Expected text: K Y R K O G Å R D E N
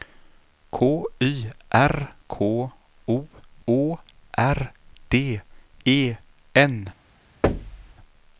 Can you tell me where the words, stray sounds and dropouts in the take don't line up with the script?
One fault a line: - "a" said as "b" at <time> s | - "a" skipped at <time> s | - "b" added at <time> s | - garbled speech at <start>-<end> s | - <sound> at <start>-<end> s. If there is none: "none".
- "G" skipped at 3.3 s
- thud at 7.4-7.9 s